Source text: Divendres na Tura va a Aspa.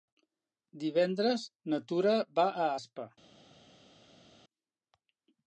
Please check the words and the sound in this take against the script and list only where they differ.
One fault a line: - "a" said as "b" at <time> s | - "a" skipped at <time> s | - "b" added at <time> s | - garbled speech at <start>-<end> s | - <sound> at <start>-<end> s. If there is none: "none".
none